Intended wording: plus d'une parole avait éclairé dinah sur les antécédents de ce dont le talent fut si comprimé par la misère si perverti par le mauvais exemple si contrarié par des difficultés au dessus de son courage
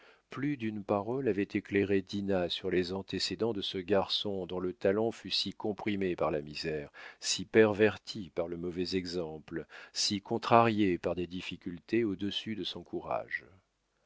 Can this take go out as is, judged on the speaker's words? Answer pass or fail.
fail